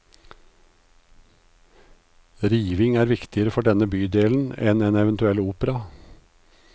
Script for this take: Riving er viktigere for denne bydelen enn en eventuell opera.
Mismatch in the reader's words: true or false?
false